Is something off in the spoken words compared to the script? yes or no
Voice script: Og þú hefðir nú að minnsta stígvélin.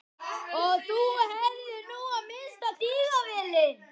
no